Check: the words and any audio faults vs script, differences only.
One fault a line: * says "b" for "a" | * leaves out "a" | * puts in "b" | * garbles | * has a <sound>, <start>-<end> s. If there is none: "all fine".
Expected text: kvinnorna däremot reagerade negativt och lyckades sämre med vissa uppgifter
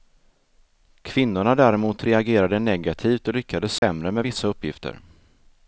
* has a dropout, 3.8-3.8 s